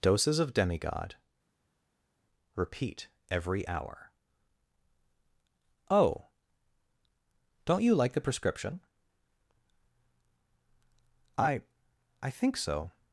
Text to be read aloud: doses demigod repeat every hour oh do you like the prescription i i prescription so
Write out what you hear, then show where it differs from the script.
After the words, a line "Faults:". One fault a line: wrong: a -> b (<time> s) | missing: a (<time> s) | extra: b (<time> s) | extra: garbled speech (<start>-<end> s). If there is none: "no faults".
doses of demigod repeat every hour oh don't you like the prescription i i think so
Faults:
extra: of (0.4 s)
wrong: do -> don't (7.7 s)
wrong: prescription -> think (12.3 s)